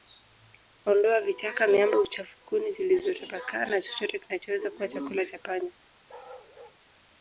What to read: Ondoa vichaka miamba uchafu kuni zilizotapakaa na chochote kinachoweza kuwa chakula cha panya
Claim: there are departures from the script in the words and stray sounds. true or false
true